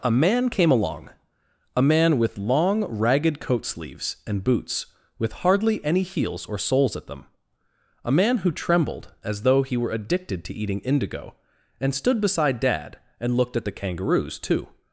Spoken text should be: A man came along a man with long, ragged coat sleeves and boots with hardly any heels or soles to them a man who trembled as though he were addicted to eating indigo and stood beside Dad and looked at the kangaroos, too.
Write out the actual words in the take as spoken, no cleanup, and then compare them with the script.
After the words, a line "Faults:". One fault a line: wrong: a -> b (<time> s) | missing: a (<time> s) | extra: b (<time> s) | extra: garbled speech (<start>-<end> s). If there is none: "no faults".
A man came along a man with long, ragged coat sleeves and boots with hardly any heels or soles at them a man who trembled as though he were addicted to eating indigo and stood beside Dad and looked at the kangaroos, too.
Faults:
wrong: to -> at (7.0 s)